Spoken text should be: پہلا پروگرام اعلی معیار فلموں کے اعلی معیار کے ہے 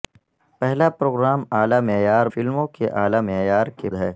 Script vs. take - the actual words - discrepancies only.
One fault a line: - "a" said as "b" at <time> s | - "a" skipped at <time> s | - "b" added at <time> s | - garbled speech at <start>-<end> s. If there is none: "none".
none